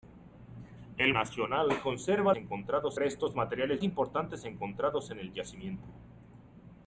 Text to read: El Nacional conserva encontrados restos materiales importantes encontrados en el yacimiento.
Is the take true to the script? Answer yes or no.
yes